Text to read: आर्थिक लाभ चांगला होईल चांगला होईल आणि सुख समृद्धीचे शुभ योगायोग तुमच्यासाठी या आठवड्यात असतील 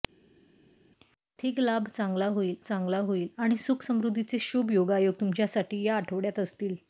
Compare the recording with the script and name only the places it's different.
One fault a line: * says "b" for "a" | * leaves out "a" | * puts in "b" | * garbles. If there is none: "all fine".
all fine